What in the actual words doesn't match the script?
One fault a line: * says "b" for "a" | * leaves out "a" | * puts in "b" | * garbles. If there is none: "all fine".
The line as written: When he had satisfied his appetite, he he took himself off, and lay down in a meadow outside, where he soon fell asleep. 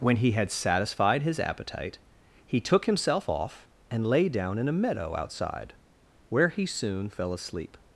* leaves out "he"